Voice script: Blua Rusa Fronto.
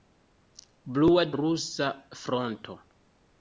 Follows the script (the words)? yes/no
yes